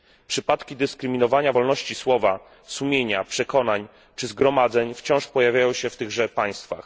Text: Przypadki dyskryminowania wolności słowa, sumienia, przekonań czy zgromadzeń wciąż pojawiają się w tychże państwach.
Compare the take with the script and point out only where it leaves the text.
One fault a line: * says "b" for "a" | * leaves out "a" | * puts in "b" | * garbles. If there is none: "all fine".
all fine